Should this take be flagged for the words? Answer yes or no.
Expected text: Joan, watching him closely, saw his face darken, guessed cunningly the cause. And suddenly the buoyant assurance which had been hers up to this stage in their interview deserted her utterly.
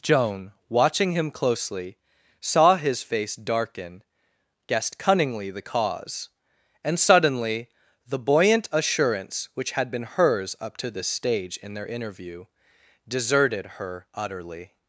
no